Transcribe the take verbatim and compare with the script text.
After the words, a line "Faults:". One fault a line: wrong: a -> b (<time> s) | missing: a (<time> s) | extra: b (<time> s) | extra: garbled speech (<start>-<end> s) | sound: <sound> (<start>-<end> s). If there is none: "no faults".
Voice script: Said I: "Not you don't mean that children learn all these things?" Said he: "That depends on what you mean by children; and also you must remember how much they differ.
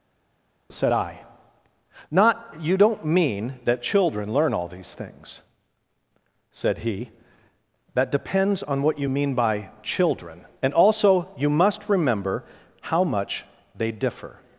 Said I: "Not you don't mean that children learn all these things?" Said he: "That depends on what you mean by children; and also you must remember how much they differ.
Faults:
no faults